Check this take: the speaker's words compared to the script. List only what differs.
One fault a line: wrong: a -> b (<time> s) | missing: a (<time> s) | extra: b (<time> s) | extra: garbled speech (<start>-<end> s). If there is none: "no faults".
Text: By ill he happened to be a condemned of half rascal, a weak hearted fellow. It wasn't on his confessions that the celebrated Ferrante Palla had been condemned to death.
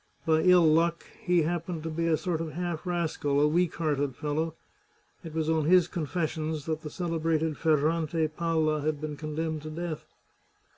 extra: luck (0.7 s)
wrong: condemned -> sort (2.2 s)
wrong: wasn't -> was (5.3 s)